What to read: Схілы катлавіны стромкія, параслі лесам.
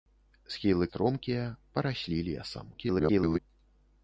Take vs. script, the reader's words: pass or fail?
fail